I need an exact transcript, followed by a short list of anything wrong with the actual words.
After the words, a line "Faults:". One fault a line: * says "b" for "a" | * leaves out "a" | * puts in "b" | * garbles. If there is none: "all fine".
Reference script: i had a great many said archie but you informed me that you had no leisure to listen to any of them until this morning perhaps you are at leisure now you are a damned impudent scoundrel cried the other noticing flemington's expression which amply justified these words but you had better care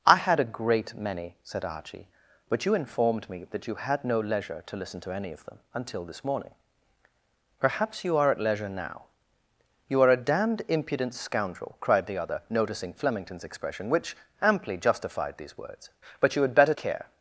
i had a great many said archie but you informed me that you had no leisure to listen to any of them until this morning perhaps you are at leisure now you are a damned impudent scoundrel cried the other noticing flemington's expression which amply justified these words but you had better care
Faults:
all fine